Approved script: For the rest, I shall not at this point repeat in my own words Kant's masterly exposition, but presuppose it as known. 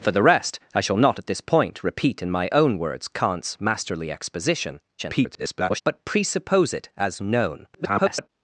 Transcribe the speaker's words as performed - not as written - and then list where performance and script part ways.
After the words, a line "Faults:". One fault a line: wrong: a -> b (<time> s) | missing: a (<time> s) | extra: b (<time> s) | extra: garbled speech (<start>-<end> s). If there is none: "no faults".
For the rest, I shall not at this point repeat in my own words Kant's masterly exposition, [garbled] but presuppose it as known. [garbled]
Faults:
extra: garbled speech (5.0-5.8 s)
extra: garbled speech (7.7-8.3 s)